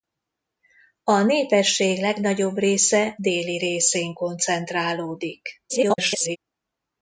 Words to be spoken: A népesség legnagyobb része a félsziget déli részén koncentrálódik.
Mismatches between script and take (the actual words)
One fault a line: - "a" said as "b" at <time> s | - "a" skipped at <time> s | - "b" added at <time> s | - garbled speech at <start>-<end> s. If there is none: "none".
- "a félsziget" skipped at 3.1 s
- garbled speech at 5.7-6.4 s